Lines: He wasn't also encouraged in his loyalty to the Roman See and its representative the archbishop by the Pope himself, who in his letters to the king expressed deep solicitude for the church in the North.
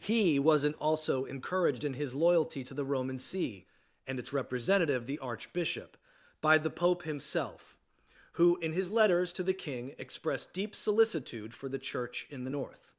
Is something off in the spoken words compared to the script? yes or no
no